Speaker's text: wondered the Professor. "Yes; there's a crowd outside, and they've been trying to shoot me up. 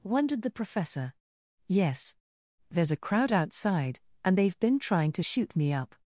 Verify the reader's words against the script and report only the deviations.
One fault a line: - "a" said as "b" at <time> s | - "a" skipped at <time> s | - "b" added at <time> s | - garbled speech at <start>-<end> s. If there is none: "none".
none